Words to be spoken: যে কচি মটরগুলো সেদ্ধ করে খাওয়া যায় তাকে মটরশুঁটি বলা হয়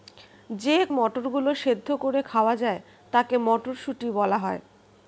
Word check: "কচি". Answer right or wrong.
wrong